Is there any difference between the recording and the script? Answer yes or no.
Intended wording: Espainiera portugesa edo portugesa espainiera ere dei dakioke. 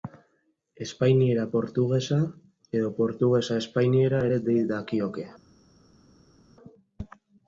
no